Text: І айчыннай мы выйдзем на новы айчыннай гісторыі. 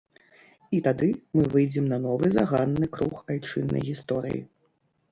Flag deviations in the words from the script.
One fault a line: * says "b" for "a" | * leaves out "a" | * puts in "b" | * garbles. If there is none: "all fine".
* says "тады" for "айчыннай"
* puts in "заганны круг"